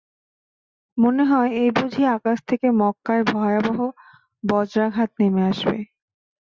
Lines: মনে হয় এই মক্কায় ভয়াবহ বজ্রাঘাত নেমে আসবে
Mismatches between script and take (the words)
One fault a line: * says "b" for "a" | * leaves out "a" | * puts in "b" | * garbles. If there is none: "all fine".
* puts in "বুঝি আকাশ থেকে"